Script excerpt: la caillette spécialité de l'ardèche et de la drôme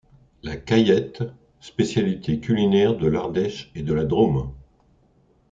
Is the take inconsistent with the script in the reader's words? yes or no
yes